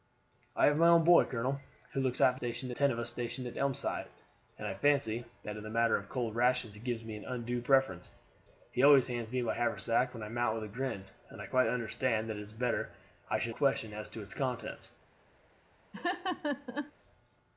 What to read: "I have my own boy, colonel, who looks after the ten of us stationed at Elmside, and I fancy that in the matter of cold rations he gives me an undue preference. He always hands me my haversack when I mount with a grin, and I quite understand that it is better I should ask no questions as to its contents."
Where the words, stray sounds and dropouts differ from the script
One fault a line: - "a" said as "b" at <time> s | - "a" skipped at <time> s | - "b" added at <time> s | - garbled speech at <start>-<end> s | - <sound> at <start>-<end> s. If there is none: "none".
- "the" said as "stationed" at 2.4 s
- "ask no" skipped at 13.6 s
- laugh at 15.9-16.9 s